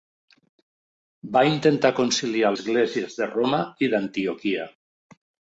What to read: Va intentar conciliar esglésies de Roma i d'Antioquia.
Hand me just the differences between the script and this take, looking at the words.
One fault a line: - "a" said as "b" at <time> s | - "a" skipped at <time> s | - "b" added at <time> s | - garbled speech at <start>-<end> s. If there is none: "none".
none